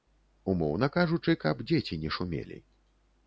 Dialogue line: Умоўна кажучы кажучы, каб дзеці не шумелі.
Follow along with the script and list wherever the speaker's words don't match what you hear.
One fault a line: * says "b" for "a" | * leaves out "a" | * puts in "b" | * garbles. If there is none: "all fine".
* leaves out "кажучы"